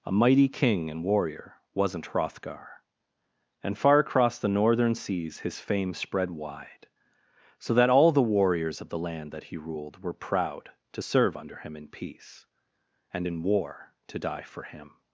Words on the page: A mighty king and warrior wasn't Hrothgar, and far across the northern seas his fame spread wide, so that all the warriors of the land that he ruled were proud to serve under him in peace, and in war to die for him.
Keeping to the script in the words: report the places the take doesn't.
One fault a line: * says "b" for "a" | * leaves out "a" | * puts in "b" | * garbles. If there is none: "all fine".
all fine